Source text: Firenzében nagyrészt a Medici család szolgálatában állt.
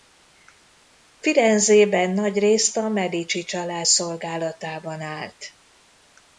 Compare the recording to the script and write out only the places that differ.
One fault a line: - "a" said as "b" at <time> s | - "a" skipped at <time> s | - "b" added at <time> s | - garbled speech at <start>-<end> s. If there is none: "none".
none